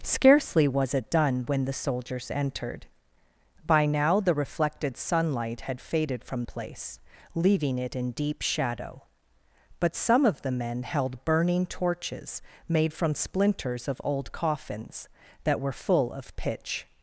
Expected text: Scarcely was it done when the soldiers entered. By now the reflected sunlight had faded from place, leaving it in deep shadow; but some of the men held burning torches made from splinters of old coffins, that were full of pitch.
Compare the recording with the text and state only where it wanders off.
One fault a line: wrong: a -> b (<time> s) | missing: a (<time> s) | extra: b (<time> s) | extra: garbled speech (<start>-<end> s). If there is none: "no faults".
no faults